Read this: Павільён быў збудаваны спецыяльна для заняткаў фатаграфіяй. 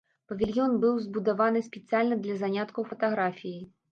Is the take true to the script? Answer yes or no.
yes